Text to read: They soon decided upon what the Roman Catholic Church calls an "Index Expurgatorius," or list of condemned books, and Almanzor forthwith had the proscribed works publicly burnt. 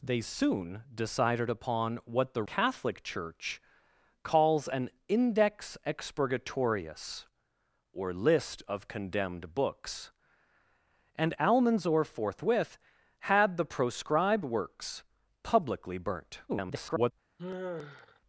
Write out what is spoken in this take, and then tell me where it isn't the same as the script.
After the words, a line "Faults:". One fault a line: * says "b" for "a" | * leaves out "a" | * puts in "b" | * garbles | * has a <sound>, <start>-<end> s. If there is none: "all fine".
They soon decided upon what the Catholic Church calls an "Index Expurgatorius," or list of condemned books, and Almanzor forthwith had the proscribed works publicly burnt. [garbled]
Faults:
* leaves out "Roman"
* garbles
* has a sigh, 17.4-18.2 s